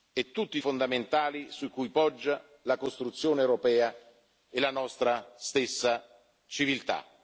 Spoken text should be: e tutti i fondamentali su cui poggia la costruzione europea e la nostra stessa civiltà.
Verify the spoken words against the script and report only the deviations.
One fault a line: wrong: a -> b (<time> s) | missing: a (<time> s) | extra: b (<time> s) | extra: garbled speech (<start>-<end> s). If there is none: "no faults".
no faults